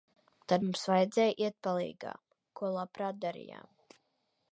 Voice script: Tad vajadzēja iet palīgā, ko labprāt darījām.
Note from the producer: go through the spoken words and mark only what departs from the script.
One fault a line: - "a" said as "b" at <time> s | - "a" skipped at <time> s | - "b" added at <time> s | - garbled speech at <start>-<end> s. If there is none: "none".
- "mums" added at 0.6 s